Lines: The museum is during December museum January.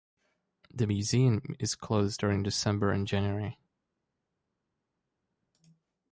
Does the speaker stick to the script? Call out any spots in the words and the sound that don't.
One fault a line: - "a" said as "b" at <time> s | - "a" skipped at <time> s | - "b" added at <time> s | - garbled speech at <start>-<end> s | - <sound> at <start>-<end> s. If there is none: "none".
- "closed" added at 1.8 s
- "museum" said as "and" at 2.9 s